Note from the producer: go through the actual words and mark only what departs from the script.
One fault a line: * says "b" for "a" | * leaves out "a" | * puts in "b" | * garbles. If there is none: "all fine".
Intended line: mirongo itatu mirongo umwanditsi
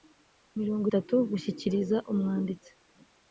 * says "gushyikiriza" for "mirongo"